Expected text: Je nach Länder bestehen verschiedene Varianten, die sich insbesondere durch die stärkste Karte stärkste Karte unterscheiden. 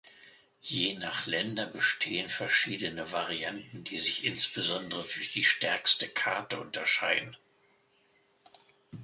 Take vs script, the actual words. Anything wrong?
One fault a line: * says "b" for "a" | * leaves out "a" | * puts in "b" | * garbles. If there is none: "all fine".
* leaves out "stärkste Karte"